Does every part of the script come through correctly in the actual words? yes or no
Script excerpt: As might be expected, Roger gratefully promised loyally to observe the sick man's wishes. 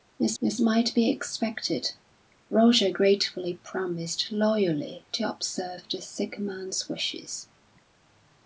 no